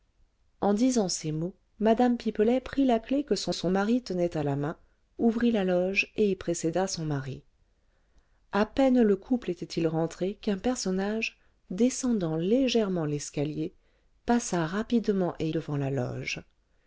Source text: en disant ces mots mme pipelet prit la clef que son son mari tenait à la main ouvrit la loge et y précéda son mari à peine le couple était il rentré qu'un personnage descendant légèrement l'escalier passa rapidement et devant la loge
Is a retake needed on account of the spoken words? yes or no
no